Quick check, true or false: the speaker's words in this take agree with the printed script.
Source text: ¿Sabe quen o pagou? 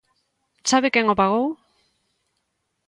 true